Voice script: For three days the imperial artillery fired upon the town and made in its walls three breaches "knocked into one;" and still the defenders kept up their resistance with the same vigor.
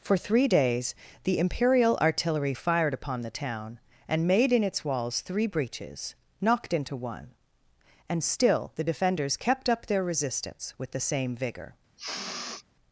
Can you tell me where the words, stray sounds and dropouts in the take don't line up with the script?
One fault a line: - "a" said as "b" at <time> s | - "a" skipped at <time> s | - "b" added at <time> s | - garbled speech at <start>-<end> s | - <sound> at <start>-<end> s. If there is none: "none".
- sniff at 12.0-12.6 s